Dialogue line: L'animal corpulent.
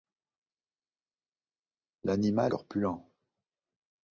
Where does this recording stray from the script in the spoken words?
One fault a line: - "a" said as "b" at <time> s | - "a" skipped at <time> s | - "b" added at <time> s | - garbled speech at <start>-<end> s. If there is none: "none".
none